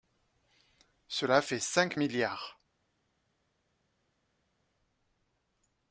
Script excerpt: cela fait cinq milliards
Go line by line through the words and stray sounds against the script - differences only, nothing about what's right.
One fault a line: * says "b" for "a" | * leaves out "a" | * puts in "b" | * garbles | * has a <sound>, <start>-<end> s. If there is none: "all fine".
all fine